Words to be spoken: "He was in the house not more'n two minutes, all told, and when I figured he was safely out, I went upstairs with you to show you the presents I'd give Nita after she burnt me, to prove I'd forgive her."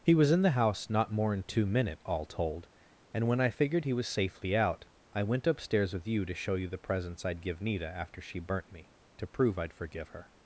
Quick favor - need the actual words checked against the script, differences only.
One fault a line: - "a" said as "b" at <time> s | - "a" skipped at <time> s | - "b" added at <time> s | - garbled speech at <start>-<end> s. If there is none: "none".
- "minutes" said as "minute" at 1.6 s